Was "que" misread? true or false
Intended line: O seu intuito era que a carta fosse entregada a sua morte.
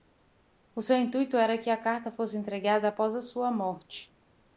false